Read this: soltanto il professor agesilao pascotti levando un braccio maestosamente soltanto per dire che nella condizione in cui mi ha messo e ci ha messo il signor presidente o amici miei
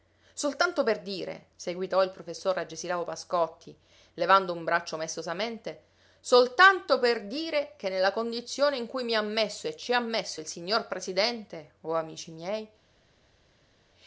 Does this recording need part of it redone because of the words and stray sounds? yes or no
yes